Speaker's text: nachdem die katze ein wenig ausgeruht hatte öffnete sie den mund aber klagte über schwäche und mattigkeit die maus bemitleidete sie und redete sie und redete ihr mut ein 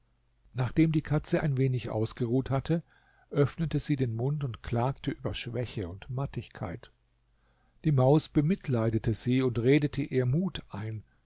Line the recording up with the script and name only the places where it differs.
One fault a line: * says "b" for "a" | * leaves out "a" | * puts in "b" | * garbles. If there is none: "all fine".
* says "und" for "aber"
* leaves out "sie und redete"